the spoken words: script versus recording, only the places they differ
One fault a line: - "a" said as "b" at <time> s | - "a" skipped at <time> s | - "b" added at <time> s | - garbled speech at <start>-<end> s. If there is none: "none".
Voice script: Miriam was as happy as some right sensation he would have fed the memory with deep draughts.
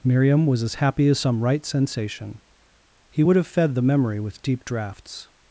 none